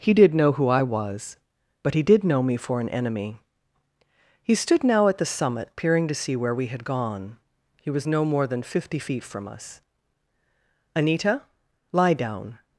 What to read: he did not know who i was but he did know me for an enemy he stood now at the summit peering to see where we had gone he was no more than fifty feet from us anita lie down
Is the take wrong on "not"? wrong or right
wrong